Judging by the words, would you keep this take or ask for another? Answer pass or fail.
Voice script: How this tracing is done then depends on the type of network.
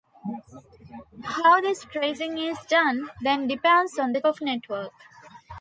fail